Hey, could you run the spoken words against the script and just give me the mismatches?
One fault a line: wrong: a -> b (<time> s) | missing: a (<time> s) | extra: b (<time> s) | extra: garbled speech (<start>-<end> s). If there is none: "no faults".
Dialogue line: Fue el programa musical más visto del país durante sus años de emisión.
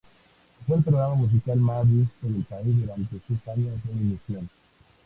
no faults